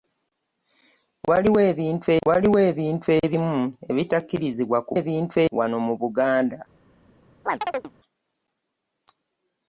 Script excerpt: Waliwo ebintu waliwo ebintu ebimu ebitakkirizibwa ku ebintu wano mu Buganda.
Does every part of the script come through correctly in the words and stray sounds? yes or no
no